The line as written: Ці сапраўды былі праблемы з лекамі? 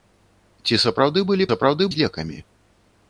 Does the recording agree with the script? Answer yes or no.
no